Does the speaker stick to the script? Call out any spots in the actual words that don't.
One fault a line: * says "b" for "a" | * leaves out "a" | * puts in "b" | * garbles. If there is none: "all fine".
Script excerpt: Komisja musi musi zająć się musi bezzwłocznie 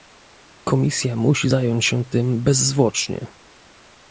* leaves out "musi"
* says "tym" for "musi"